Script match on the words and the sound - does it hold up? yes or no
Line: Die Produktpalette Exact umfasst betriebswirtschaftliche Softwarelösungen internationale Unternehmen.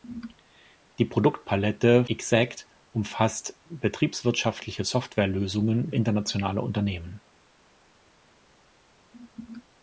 yes